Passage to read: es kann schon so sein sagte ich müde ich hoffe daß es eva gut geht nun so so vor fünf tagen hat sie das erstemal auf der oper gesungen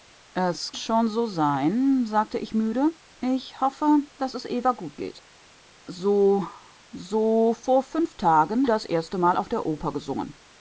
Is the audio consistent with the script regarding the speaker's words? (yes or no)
no